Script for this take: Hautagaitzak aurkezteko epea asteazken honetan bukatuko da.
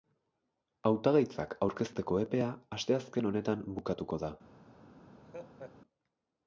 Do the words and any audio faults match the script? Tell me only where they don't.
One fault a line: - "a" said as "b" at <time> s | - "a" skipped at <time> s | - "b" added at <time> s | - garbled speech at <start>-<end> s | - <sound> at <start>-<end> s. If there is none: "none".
- laugh at 5.2-5.8 s